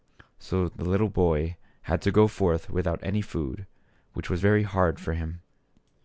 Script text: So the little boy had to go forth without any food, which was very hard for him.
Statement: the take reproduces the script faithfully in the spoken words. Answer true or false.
true